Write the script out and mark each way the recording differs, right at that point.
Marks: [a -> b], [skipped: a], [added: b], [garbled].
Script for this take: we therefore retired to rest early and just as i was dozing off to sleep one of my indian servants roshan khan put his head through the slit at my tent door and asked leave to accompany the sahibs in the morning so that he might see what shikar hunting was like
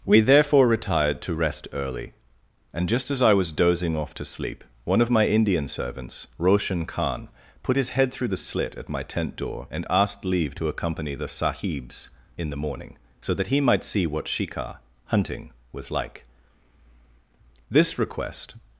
we therefore retired to rest early and just as i was dozing off to sleep one of my indian servants roshan khan put his head through the slit at my tent door and asked leave to accompany the sahibs in the morning so that he might see what shikar hunting was like [added: this request]